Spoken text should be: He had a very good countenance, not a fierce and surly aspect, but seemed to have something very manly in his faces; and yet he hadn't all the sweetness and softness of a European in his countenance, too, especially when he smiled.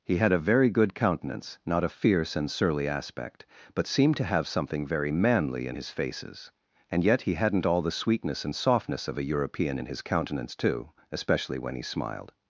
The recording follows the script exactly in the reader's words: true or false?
true